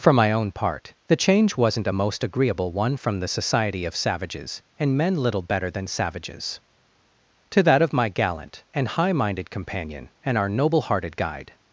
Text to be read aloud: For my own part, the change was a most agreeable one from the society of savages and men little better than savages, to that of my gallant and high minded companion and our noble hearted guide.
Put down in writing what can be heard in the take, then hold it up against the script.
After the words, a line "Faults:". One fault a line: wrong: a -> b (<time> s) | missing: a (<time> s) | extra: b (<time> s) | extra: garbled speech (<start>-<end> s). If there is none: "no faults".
For my own part, the change wasn't a most agreeable one from the society of savages and men little better than savages, to that of my gallant and high minded companion and our noble hearted guide.
Faults:
wrong: was -> wasn't (1.6 s)